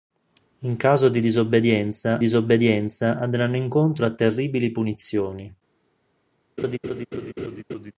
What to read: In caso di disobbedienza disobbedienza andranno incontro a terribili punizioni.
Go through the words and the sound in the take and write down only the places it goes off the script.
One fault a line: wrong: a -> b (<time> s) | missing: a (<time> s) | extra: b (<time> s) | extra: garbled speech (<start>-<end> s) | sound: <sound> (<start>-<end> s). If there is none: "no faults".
sound: laugh (6.6-7.9 s)